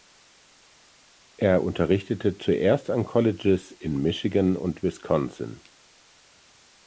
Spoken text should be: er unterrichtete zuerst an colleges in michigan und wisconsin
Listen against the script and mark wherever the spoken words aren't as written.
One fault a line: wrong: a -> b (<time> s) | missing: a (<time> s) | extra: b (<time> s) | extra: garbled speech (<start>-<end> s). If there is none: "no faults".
no faults